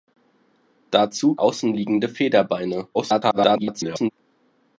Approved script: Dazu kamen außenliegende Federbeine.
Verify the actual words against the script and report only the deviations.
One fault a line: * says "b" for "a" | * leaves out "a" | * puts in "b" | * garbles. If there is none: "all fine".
* leaves out "kamen"
* garbles